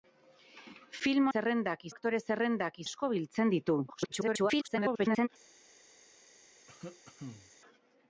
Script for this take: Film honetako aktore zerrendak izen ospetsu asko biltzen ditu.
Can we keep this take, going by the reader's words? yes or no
no